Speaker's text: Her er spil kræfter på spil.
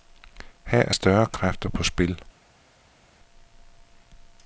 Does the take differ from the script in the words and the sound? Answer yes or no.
yes